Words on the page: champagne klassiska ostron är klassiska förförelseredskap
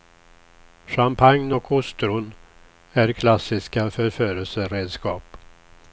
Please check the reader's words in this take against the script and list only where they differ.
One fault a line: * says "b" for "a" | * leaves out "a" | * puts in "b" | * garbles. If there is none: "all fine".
* says "och" for "klassiska"